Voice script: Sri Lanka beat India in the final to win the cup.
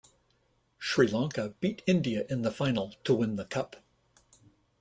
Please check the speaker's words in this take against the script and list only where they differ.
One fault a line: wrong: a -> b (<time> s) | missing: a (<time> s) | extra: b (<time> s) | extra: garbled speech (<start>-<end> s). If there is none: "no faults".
no faults